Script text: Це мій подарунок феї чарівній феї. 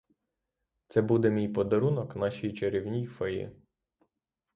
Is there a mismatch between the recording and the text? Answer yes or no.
yes